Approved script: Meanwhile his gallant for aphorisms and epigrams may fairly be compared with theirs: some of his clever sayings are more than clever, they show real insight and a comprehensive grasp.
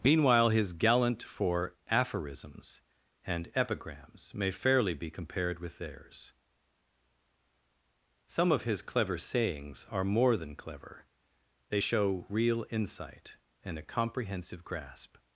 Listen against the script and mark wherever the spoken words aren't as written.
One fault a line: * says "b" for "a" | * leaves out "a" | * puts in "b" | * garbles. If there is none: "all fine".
all fine